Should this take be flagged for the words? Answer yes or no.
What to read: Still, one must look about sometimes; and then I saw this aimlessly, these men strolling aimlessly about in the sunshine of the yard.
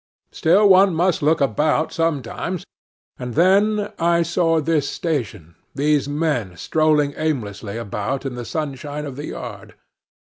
yes